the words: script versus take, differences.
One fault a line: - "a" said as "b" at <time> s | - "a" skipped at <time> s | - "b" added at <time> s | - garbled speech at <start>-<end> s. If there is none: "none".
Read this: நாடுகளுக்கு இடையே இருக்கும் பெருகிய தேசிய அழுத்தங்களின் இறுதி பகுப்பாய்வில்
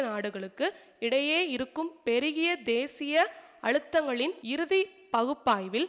none